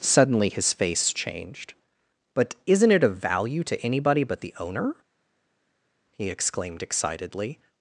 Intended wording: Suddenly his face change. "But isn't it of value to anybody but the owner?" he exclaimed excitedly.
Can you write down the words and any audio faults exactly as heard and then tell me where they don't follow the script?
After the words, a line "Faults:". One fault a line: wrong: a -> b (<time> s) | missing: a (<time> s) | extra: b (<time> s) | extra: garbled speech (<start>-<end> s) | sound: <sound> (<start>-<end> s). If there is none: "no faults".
Suddenly his face changed. "But isn't it of value to anybody but the owner?" he exclaimed excitedly.
Faults:
wrong: change -> changed (1.1 s)